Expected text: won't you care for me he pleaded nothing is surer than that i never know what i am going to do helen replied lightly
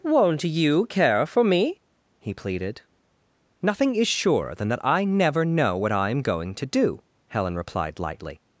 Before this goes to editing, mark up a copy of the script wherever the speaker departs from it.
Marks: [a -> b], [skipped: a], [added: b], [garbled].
won't you care for me he pleaded nothing is surer than that i never know what i am going to do helen replied lightly